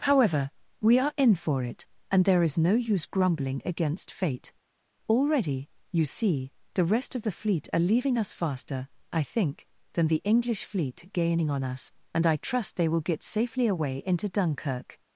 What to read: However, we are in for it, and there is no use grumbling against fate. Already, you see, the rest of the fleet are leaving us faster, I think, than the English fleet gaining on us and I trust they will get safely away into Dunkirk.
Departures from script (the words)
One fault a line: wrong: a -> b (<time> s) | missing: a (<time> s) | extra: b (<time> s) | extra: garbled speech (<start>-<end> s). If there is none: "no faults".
no faults